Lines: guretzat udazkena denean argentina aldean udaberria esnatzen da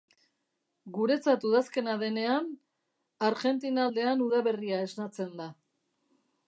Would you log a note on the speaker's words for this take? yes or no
no